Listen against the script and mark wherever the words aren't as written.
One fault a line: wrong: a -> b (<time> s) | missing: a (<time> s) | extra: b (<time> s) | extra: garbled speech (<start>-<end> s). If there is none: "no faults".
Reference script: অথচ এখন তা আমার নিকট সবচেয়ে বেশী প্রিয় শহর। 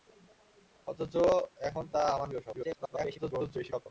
missing: নিকট সবচেয়ে বেশী (2.3 s)
extra: garbled speech (2.5-3.9 s)